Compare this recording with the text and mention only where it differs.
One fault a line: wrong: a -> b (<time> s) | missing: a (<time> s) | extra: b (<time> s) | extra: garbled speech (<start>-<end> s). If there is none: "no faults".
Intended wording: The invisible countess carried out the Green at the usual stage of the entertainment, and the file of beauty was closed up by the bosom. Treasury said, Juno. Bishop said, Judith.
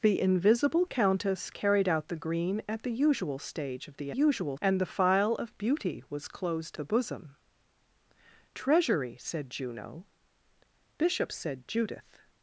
wrong: entertainment -> usual (4.1 s)
missing: up by (6.8 s)